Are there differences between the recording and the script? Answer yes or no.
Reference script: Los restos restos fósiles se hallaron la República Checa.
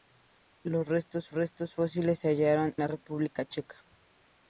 no